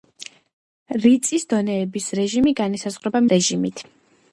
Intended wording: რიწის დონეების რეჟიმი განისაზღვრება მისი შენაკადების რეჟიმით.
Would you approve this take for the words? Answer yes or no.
no